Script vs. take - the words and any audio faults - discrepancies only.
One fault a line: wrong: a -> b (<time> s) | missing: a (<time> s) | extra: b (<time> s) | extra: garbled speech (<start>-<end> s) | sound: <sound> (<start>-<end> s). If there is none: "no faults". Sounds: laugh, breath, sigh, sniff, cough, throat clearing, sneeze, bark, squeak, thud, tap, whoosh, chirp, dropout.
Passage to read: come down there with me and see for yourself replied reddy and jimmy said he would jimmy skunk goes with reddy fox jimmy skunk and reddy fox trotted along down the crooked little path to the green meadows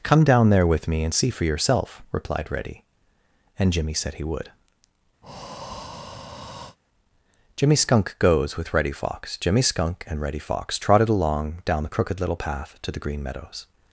sound: breath (5.2-6.8 s)